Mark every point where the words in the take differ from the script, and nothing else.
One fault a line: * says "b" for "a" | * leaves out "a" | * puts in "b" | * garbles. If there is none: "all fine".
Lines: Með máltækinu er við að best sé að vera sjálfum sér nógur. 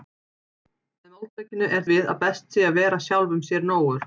all fine